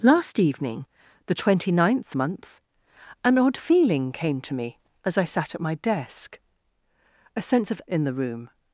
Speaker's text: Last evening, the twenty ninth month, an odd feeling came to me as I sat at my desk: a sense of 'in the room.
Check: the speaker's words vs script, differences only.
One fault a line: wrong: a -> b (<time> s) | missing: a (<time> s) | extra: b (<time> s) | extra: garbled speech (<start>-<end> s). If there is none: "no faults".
no faults